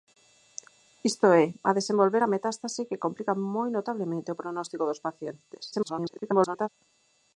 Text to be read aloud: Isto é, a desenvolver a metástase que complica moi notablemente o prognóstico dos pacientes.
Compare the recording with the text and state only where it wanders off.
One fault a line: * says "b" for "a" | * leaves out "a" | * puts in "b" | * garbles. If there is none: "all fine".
* garbles